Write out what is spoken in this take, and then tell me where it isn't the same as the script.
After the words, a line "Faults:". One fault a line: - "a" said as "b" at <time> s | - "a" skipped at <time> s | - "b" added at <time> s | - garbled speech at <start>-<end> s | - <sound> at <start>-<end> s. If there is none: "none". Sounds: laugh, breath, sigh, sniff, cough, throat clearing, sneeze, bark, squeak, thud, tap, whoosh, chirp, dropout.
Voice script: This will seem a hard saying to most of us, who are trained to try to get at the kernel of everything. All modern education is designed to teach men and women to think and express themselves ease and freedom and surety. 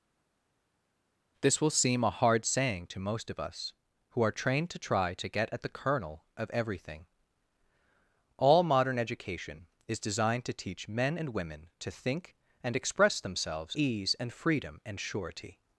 This will seem a hard saying to most of us, who are trained to try to get at the kernel of everything. All modern education is designed to teach men and women to think and express themselves ease and freedom and surety.
Faults:
none